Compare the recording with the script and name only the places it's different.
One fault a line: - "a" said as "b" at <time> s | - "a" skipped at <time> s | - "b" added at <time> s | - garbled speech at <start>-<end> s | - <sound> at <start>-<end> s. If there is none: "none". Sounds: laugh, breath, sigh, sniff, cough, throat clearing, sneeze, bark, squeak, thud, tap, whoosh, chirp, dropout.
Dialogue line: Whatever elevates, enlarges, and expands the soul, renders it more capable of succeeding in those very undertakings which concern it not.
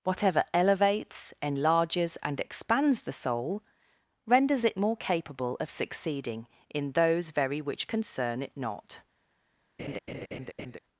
- "undertakings" skipped at 7.6 s
- laugh at 9.8-10.8 s